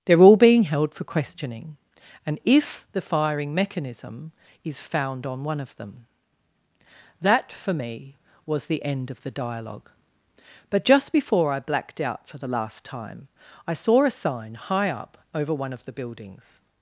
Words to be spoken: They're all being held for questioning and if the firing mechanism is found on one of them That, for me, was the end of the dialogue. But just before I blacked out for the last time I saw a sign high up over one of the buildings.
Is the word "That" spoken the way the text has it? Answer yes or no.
yes